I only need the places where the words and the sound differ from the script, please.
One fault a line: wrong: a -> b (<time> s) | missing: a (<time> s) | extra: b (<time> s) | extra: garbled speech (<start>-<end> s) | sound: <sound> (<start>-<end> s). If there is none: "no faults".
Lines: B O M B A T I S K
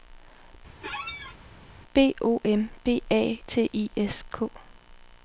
sound: squeak (0.8-1.4 s)